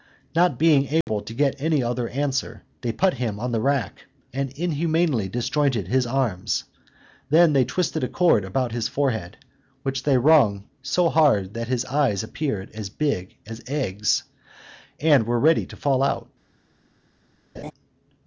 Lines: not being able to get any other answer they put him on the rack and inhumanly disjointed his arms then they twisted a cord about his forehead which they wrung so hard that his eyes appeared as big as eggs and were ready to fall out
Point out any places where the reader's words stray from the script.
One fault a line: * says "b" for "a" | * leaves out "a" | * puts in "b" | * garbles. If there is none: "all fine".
all fine